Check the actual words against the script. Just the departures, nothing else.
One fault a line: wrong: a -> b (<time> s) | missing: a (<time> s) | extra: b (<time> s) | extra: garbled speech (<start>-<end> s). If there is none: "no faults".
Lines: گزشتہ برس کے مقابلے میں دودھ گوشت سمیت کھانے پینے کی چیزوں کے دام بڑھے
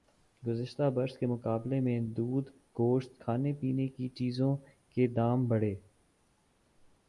missing: سمیت (3.2 s)